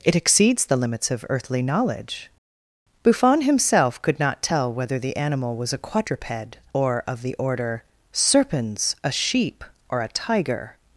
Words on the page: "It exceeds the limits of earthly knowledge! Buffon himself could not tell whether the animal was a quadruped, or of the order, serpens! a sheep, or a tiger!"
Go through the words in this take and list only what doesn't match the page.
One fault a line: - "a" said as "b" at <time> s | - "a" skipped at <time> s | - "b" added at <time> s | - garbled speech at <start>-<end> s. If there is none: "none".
none